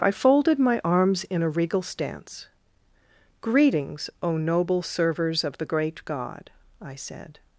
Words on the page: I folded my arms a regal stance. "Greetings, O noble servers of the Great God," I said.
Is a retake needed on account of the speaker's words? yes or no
yes